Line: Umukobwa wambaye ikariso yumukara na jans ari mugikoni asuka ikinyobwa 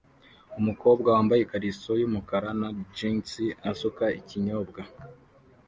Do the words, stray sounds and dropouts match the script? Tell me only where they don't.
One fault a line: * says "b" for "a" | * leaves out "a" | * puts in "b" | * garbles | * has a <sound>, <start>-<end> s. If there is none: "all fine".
* leaves out "ari mugikoni"